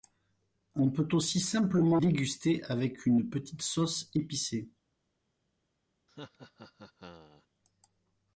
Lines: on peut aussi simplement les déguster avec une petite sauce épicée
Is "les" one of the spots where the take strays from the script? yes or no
yes